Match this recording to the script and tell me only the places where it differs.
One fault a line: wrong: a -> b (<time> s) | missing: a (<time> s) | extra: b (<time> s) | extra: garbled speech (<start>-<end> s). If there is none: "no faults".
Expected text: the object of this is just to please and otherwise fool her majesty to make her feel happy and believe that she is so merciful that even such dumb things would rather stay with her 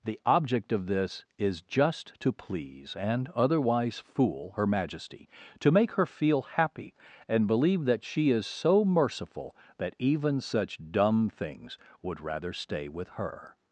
no faults